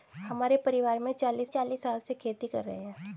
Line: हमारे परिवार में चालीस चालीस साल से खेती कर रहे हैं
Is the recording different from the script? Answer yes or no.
no